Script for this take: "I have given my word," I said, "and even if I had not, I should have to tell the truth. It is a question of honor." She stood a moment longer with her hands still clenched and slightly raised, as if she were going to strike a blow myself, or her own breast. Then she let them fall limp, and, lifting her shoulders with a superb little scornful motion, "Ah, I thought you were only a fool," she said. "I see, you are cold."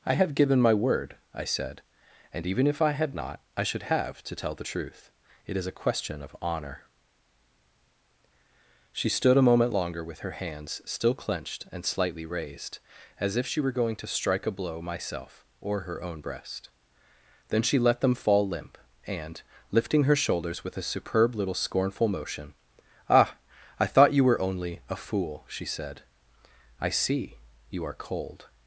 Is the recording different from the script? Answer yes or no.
no